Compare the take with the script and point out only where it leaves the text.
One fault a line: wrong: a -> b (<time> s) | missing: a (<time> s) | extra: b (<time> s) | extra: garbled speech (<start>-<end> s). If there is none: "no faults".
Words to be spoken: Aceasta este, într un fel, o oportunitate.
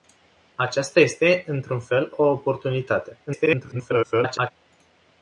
extra: garbled speech (3.3-4.5 s)